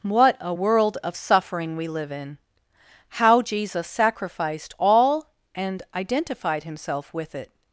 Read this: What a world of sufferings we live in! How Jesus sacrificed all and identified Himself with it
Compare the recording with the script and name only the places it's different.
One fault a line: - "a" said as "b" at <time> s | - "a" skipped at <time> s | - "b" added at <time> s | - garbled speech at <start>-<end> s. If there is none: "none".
- "sufferings" said as "suffering" at 1.2 s